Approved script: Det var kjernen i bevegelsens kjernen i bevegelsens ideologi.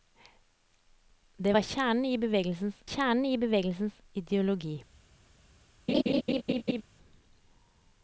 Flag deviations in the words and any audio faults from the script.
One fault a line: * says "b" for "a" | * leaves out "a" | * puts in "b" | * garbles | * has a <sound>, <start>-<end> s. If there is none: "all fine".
* has a laugh, 5.9-6.8 s